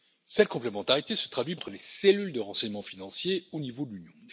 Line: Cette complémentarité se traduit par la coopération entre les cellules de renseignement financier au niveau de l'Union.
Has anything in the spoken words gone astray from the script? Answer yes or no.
yes